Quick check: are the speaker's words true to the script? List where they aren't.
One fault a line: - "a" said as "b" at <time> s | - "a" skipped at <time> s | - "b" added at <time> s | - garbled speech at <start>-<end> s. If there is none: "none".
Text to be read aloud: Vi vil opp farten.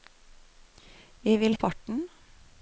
none